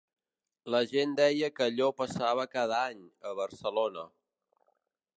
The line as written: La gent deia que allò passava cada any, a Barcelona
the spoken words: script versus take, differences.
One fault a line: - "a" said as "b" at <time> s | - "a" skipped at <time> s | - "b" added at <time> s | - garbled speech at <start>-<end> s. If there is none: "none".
none